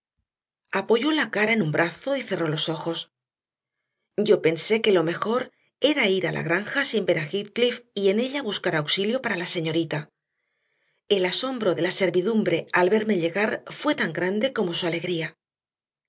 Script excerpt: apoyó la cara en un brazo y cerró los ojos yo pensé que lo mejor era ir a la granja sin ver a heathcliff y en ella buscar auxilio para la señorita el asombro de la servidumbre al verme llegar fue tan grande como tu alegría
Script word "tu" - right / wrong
wrong